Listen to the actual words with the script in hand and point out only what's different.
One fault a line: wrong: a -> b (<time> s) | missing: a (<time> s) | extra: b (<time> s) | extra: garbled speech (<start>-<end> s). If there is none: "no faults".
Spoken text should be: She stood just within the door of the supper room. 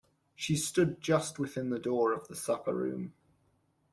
no faults